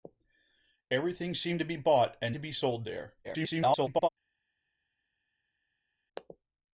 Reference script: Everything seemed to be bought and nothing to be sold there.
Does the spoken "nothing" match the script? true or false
false